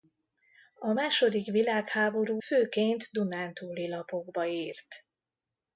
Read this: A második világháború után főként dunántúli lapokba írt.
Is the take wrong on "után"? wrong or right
wrong